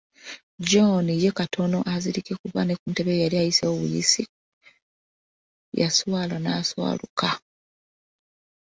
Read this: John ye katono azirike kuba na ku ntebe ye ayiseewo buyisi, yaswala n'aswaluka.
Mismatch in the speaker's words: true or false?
true